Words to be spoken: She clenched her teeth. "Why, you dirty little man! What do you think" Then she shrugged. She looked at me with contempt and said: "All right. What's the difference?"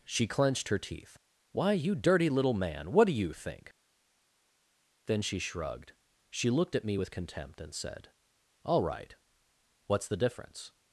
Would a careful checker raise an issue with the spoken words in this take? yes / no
no